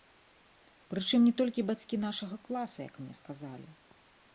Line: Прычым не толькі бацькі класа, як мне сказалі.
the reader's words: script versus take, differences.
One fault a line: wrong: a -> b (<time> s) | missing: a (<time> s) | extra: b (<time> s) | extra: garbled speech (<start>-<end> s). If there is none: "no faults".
extra: нашага (2.1 s)